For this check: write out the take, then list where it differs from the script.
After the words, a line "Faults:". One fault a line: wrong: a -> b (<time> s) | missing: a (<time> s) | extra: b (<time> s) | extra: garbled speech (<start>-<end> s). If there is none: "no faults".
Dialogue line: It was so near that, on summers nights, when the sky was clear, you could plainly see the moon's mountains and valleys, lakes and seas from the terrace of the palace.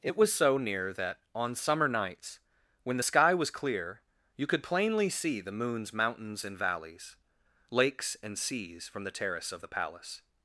It was so near that, on summer nights, when the sky was clear, you could plainly see the moon's mountains and valleys, lakes and seas from the terrace of the palace.
Faults:
wrong: summers -> summer (1.5 s)